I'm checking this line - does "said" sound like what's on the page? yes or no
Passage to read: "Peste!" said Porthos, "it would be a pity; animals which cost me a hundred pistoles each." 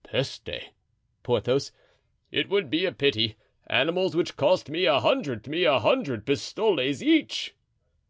no